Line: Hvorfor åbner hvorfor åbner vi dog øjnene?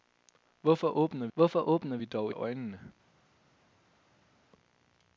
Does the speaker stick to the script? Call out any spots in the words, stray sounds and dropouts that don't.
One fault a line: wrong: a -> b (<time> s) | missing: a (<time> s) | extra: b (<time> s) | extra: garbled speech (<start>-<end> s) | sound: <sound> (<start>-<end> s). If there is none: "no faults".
no faults